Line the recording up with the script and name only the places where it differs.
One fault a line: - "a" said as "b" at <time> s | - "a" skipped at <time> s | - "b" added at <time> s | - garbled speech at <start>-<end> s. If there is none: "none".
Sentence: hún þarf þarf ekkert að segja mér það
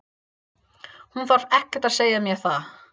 - "þarf" skipped at 1.5 s